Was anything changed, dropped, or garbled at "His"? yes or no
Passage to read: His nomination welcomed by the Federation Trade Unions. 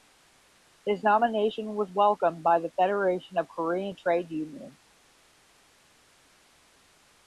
no